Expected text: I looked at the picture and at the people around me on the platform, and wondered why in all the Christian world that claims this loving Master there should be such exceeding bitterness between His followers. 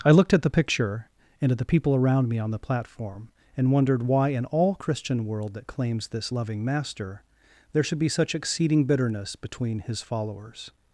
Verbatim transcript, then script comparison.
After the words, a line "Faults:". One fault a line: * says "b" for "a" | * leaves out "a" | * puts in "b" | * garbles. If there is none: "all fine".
I looked at the picture and at the people around me on the platform, and wondered why in all Christian world that claims this loving Master there should be such exceeding bitterness between His followers.
Faults:
* leaves out "the"